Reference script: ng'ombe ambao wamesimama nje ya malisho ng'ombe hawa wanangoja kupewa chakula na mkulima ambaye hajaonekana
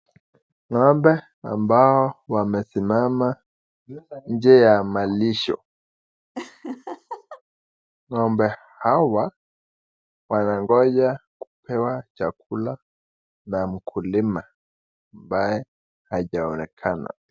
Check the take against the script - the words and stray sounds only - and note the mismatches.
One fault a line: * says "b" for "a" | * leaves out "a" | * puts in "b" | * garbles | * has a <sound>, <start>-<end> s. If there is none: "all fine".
* has a laugh, 6.3-7.4 s